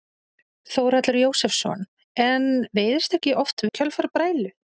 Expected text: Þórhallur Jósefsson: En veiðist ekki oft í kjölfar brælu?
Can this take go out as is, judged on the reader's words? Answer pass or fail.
pass